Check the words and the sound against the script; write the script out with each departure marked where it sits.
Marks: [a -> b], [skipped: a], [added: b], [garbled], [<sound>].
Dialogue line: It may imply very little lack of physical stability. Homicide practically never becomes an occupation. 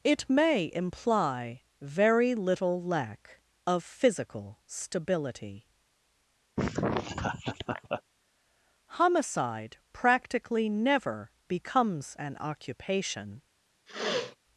It may imply very little lack of physical stability. [laugh] Homicide practically never becomes an occupation. [sniff]